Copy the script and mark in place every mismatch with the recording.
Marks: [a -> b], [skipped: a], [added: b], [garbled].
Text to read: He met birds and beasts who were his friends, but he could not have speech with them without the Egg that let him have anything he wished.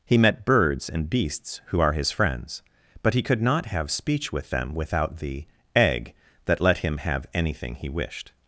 He met birds and beasts who [were -> are] his friends, but he could not have speech with them without the Egg that let him have anything he wished.